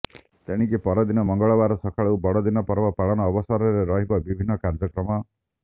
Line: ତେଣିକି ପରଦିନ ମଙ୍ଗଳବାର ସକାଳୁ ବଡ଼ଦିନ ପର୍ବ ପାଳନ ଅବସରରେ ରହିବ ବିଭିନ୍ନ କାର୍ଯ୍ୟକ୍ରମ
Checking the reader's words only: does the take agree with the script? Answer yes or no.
yes